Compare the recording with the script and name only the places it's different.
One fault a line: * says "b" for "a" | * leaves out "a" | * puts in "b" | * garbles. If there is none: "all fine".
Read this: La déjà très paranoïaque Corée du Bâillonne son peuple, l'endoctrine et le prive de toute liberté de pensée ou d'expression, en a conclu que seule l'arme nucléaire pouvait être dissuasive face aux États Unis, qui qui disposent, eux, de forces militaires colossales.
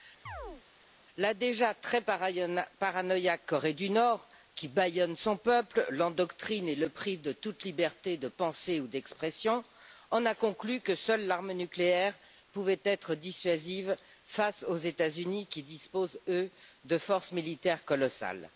* puts in "Nord qui"
* leaves out "qui"